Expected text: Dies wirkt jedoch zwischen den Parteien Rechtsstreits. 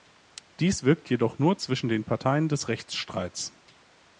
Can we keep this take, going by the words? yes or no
no